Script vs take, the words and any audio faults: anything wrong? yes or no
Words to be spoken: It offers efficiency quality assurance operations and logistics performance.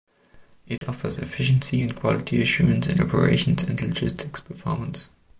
yes